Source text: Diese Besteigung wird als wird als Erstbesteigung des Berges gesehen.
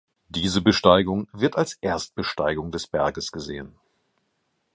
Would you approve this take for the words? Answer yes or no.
no